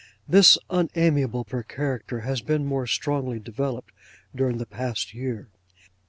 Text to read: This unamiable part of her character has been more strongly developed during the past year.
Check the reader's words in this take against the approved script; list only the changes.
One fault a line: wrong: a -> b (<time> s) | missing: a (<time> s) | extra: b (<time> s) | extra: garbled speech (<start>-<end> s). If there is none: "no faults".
missing: part (1.4 s)